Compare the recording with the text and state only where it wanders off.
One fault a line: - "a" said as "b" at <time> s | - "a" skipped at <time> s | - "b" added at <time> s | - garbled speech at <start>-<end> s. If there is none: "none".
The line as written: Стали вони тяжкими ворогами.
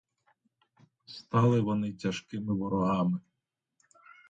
none